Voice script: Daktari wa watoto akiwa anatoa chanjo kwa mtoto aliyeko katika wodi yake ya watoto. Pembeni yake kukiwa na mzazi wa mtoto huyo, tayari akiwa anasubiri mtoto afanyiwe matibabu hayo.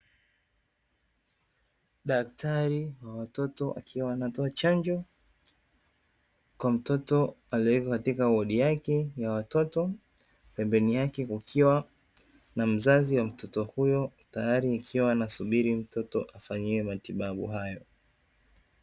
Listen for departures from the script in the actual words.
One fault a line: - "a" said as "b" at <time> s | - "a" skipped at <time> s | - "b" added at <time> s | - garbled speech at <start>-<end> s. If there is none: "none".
none